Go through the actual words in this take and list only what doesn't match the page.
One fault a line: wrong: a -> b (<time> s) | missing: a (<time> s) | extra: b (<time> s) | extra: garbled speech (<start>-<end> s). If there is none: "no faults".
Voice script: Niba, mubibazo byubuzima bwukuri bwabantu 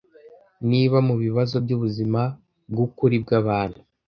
no faults